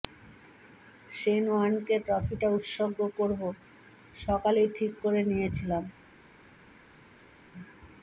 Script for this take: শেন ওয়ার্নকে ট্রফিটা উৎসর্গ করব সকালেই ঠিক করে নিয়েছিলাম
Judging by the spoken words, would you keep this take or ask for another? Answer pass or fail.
pass